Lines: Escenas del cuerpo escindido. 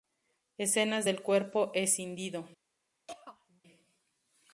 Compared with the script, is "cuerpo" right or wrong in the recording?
right